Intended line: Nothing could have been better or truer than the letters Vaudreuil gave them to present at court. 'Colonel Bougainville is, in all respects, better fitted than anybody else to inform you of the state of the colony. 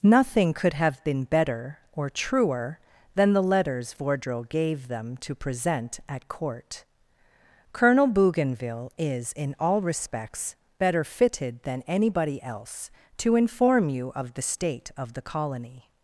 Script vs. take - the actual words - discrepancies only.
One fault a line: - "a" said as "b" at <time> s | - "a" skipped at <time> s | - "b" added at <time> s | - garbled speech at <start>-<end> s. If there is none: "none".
none